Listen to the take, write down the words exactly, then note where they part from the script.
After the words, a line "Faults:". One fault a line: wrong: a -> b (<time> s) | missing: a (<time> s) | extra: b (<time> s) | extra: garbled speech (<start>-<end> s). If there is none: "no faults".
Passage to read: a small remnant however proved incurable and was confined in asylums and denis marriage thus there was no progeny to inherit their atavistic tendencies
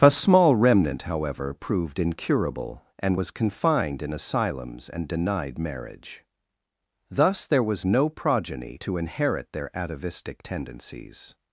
a small remnant however proved incurable and was confined in asylums and denied marriage thus there was no progeny to inherit their atavistic tendencies
Faults:
wrong: denis -> denied (5.1 s)